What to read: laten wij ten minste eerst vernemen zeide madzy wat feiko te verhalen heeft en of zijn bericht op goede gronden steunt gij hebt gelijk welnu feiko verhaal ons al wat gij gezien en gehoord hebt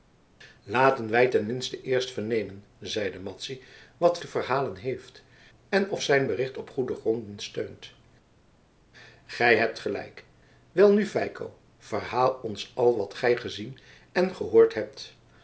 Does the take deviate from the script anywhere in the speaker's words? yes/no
yes